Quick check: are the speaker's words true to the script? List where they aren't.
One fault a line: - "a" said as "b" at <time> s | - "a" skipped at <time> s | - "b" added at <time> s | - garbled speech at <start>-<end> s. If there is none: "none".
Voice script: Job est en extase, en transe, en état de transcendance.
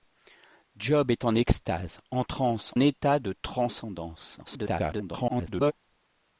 - "en" skipped at 2.7 s
- garbled speech at 4.5-5.7 s